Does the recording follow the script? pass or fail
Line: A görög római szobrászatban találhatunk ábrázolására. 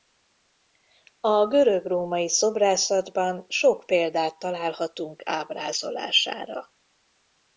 fail